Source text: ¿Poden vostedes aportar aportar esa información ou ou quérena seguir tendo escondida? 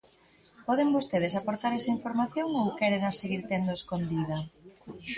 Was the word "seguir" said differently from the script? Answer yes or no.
no